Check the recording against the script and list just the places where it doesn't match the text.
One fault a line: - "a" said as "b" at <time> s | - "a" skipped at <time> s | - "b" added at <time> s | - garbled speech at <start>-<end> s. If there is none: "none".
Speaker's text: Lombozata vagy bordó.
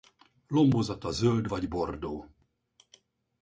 - "zöld" added at 1.1 s